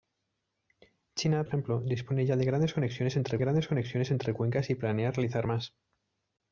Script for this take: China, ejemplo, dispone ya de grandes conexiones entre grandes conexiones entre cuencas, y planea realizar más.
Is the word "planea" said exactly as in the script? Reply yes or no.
yes